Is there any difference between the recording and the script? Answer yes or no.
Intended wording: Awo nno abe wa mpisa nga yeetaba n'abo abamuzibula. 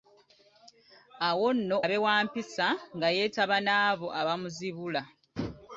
no